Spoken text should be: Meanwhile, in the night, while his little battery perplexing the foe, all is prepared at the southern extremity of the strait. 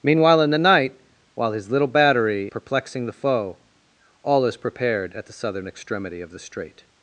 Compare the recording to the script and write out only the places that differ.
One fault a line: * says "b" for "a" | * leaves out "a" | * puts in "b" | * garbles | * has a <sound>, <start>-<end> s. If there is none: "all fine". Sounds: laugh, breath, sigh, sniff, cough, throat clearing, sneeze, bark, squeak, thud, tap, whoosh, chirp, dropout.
all fine